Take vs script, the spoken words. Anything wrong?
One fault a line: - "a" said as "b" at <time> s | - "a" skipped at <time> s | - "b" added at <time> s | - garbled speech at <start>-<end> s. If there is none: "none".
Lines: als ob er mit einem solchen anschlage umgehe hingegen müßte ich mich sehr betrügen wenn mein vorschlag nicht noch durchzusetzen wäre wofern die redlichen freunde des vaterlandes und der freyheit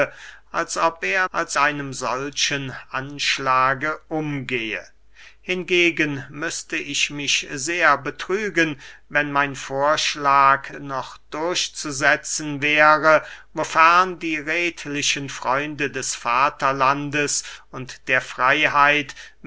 - "mit" said as "als" at 1.3 s
- "nicht" skipped at 10.7 s